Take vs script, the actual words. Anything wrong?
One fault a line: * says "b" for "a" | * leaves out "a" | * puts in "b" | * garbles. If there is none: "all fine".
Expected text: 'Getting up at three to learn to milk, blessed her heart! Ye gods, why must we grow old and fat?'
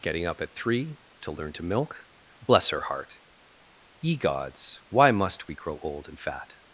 * says "bless" for "blessed"